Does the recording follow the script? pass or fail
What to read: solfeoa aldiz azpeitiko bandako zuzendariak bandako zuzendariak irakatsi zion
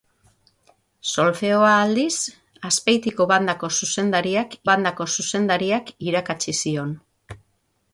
pass